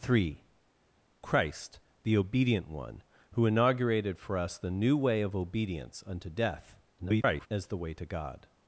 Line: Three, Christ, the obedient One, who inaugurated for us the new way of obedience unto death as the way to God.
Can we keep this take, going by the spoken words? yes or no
no